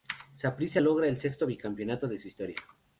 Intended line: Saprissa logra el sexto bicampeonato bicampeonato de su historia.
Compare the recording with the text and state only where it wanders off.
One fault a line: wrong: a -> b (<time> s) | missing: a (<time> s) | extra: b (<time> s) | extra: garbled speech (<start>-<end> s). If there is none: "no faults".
missing: bicampeonato (2.1 s)